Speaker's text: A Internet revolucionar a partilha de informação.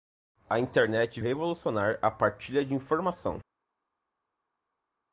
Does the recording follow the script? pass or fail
pass